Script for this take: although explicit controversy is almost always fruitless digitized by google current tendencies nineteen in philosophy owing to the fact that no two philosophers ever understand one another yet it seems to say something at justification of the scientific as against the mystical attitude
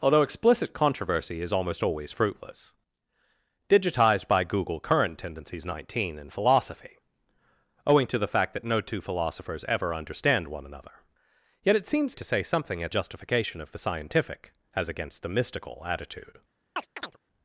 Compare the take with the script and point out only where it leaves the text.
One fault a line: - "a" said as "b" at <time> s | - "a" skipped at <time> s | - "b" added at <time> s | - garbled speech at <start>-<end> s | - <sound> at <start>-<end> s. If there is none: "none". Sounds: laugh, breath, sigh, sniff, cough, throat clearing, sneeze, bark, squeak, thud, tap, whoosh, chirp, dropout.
- chirp at 16.8-17.2 s